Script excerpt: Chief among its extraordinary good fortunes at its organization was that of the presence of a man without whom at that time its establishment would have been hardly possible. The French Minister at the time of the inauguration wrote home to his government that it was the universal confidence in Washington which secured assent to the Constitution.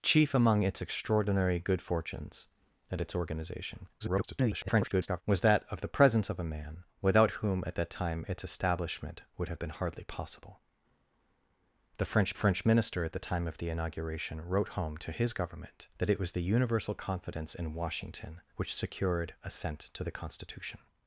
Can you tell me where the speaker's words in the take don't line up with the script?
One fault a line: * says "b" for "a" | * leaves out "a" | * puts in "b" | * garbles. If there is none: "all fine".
* garbles
* puts in "French"